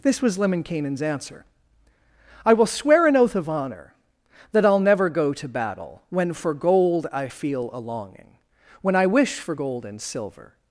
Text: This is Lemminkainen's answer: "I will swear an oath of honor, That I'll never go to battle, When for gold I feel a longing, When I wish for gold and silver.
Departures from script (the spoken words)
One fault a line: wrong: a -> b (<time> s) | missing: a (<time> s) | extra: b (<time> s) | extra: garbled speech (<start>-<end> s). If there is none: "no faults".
wrong: is -> was (0.2 s)